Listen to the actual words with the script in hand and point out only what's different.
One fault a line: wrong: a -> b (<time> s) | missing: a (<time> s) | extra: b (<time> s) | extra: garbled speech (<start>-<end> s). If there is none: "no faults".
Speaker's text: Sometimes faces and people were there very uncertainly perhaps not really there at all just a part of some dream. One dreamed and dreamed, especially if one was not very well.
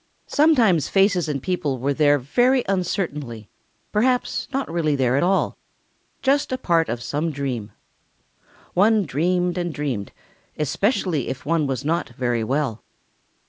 no faults